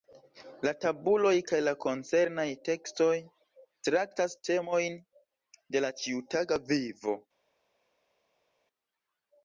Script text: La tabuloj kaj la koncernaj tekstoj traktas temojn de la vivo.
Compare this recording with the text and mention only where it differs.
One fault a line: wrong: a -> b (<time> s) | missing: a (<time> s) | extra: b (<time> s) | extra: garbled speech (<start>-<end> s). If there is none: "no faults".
extra: ĉiutaga (6.0 s)